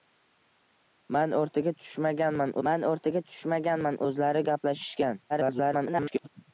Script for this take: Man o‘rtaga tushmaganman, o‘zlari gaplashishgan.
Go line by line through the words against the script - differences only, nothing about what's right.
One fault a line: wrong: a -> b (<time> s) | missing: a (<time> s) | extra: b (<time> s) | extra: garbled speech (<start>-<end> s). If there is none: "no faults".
extra: man o‘rtaga tushmaganman (2.7 s)
extra: garbled speech (5.3-6.3 s)